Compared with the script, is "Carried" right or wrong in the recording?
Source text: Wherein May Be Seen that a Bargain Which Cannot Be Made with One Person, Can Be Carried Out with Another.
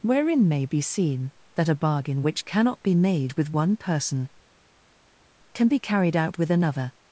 right